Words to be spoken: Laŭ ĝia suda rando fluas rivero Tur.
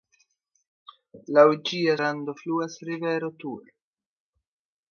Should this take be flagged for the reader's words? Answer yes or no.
yes